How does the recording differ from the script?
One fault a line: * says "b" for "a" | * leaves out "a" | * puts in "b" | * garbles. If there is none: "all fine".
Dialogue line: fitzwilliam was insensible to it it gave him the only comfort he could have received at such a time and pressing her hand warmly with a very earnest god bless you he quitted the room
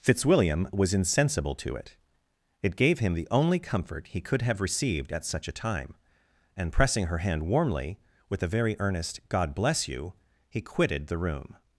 all fine